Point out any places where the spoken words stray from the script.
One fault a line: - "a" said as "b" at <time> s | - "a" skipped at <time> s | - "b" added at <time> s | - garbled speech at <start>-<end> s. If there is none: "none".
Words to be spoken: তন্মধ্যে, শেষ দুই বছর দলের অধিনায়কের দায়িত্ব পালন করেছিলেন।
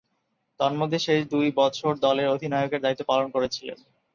none